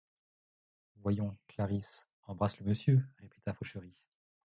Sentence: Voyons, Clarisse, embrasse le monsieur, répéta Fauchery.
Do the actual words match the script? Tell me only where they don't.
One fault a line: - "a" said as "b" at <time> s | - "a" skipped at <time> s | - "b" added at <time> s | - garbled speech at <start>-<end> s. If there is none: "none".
none